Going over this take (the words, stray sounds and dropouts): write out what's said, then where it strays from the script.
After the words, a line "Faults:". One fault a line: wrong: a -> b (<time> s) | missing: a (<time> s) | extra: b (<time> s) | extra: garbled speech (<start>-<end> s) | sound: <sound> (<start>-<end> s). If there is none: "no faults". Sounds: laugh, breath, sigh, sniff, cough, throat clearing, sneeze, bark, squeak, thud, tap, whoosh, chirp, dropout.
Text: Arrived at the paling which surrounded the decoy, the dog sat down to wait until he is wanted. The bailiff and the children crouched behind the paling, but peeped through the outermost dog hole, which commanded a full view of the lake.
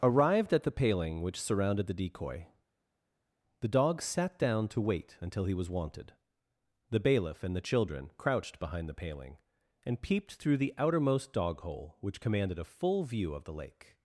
Arrived at the paling which surrounded the decoy, the dog sat down to wait until he was wanted. The bailiff and the children crouched behind the paling, and peeped through the outermost dog hole, which commanded a full view of the lake.
Faults:
wrong: is -> was (5.5 s)
wrong: but -> and (9.8 s)